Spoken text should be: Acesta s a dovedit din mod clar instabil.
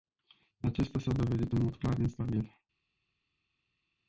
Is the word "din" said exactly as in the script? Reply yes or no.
no